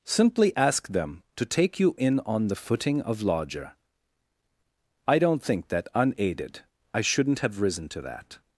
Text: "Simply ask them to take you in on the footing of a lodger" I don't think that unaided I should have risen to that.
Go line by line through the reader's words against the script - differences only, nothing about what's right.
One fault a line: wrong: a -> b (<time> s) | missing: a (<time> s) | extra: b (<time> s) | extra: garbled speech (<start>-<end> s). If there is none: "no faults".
missing: a (3.2 s)
wrong: should -> shouldn't (7.0 s)